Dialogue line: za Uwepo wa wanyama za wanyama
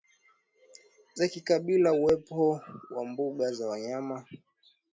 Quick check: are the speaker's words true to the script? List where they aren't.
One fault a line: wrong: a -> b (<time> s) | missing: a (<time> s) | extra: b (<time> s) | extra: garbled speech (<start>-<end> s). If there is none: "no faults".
extra: kikabila (1.3 s)
wrong: wanyama -> mbuga (3.1 s)